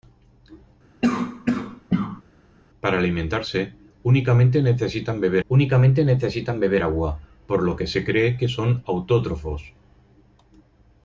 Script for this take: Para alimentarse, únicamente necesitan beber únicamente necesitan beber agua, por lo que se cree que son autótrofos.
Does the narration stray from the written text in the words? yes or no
no